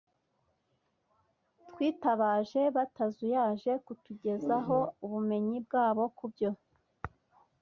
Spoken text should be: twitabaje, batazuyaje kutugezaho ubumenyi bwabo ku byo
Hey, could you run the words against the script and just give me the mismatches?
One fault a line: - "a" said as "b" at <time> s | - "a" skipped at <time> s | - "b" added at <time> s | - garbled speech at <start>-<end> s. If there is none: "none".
none